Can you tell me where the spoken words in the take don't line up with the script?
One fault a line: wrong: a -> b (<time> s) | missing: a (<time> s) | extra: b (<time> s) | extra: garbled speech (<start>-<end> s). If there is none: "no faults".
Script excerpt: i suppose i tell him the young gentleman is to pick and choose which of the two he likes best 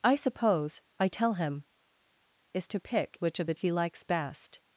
missing: the young gentleman (1.6 s)
missing: and choose (3.2 s)
missing: two (3.5 s)